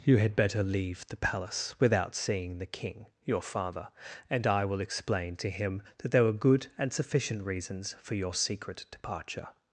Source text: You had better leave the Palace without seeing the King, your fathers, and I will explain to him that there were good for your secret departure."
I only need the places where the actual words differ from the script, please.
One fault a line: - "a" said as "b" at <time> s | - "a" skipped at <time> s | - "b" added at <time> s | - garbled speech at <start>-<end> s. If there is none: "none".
- "fathers" said as "father" at 3.4 s
- "and sufficient reasons" added at 6.8 s